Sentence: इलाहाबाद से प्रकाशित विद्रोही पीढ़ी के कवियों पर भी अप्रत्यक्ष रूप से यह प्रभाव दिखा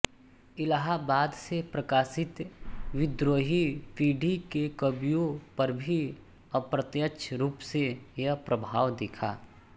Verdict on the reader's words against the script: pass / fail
pass